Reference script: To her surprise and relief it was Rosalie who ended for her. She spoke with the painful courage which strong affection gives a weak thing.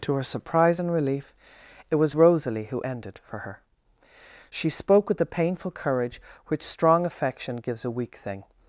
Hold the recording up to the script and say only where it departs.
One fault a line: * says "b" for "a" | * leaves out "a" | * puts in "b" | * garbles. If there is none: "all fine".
all fine